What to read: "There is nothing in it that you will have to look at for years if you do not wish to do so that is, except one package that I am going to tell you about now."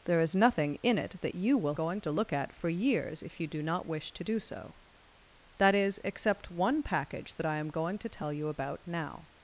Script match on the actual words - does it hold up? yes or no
no